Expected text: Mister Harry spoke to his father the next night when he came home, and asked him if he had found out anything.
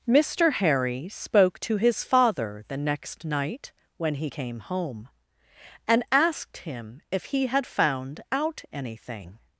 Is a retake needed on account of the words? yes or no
no